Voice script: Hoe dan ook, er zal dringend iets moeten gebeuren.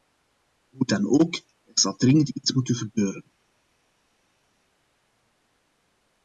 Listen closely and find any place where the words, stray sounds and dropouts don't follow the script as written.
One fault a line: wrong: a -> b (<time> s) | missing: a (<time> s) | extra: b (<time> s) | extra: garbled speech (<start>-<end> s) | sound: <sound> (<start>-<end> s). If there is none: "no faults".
no faults